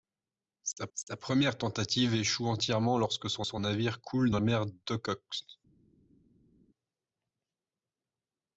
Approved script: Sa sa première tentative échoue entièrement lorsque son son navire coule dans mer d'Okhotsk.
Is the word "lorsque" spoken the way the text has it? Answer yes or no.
yes